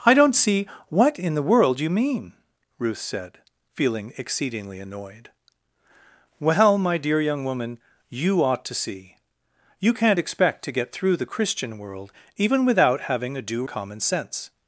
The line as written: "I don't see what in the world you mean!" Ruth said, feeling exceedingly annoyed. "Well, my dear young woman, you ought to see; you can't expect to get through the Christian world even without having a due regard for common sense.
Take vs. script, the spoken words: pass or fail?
fail